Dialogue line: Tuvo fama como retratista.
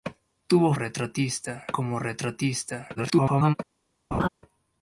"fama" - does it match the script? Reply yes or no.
no